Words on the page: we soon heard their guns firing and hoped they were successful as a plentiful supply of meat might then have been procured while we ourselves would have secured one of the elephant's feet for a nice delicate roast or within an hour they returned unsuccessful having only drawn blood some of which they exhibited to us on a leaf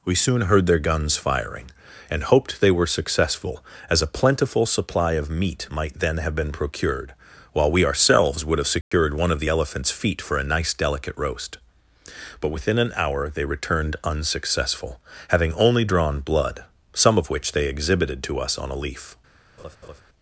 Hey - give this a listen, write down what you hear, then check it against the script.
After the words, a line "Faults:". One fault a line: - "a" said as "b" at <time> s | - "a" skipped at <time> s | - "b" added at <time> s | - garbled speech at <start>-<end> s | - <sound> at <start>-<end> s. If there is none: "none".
we soon heard their guns firing and hoped they were successful as a plentiful supply of meat might then have been procured while we ourselves would have secured one of the elephant's feet for a nice delicate roast but within an hour they returned unsuccessful having only drawn blood some of which they exhibited to us on a leaf
Faults:
- dropout at 8.8-8.9 s
- "or" said as "but" at 12.4 s
- laugh at 19.6-20.0 s